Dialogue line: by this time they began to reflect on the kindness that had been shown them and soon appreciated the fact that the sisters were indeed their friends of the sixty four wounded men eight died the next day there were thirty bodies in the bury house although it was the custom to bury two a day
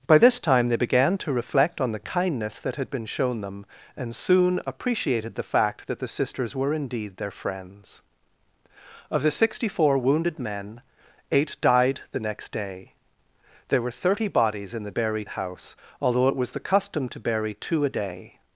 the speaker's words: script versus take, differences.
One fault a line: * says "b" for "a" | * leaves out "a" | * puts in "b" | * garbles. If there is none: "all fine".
all fine